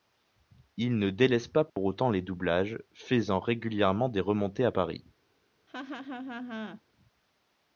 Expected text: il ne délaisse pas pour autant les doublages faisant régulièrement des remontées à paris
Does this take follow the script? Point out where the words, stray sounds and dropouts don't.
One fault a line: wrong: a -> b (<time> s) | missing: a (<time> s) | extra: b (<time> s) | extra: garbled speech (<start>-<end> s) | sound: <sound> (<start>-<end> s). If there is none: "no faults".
sound: dropout (1.7-1.8 s)
sound: laugh (5.7-6.8 s)